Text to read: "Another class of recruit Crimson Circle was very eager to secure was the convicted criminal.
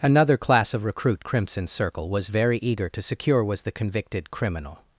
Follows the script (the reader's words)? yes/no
yes